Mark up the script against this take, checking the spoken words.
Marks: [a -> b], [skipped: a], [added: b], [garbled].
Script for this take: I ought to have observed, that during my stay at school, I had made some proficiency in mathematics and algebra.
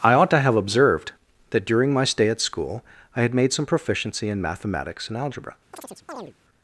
I ought to have observed, that during my stay at school, I had made some proficiency in mathematics and algebra.